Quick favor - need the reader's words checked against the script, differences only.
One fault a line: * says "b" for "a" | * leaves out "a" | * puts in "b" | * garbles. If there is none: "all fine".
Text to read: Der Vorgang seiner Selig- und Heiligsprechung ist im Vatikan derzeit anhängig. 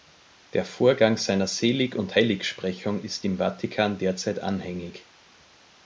all fine